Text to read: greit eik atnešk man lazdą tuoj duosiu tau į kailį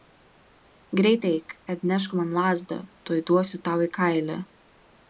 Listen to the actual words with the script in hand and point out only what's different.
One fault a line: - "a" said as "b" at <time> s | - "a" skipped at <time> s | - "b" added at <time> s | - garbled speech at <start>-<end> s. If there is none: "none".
none